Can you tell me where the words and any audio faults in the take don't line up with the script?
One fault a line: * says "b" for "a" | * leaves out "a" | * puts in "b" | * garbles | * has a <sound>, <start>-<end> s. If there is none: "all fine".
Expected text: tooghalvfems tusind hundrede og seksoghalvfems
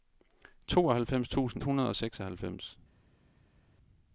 all fine